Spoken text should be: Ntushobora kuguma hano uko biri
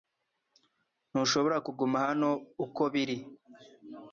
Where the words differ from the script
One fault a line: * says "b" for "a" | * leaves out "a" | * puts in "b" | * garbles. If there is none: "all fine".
all fine